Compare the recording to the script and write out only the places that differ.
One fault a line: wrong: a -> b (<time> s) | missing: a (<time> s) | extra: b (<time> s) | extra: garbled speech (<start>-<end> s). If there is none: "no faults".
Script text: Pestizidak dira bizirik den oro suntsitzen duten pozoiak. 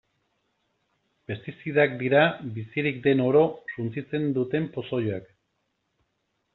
no faults